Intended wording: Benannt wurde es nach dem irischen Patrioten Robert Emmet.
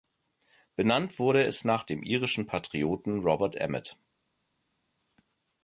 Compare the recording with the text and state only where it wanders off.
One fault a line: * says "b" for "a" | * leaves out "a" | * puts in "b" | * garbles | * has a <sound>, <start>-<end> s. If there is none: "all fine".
all fine